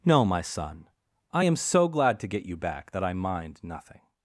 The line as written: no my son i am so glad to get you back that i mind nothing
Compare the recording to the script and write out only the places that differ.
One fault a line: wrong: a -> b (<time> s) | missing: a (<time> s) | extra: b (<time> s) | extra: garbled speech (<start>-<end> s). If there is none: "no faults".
no faults